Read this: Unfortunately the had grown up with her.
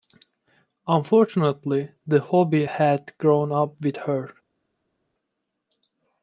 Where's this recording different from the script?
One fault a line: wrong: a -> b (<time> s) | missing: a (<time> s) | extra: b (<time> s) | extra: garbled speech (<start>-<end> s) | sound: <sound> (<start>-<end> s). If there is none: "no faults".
extra: hobby (2.2 s)